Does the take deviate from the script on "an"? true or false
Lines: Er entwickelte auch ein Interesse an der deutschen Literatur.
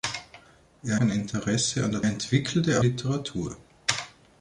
false